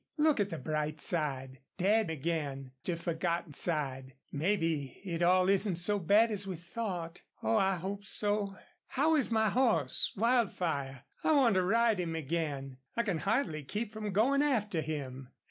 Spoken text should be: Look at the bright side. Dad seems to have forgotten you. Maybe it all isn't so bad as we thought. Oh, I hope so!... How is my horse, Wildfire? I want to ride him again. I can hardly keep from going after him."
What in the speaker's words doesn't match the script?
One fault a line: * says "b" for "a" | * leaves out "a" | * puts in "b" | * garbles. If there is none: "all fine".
* says "again" for "seems"
* says "side" for "you"